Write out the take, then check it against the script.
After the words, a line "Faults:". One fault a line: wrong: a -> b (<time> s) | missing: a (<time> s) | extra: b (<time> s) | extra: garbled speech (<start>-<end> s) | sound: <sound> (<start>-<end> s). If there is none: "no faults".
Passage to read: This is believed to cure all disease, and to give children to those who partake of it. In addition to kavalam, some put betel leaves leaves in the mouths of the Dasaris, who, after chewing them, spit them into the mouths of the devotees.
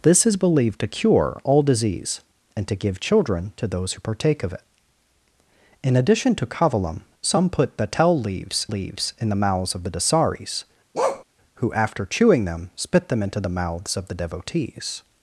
This is believed to cure all disease, and to give children to those who partake of it. In addition to kavalam, some put betel leaves leaves in the mouths of the Dasaris, who, after chewing them, spit them into the mouths of the devotees.
Faults:
sound: bark (10.9-11.2 s)